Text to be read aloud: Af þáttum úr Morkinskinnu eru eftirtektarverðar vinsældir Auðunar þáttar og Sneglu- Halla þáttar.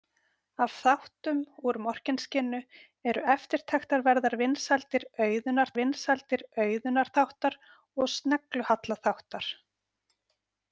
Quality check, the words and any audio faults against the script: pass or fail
fail